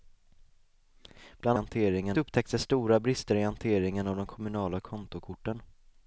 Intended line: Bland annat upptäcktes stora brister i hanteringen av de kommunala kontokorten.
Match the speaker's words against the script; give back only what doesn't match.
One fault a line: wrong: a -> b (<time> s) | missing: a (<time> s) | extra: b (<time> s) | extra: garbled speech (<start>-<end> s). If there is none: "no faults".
wrong: annat -> hanteringen (1.5 s)